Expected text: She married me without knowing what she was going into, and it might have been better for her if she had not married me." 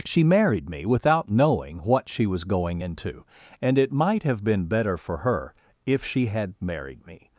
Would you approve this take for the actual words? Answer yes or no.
no